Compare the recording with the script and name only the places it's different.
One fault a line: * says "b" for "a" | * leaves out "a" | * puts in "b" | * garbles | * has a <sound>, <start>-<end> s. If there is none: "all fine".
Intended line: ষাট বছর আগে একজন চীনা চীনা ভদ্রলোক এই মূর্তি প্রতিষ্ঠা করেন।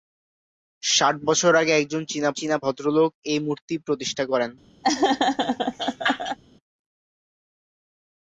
* has a laugh, 4.8-6.4 s